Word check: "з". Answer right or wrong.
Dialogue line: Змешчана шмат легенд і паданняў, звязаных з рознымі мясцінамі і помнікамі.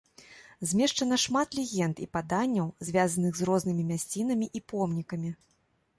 right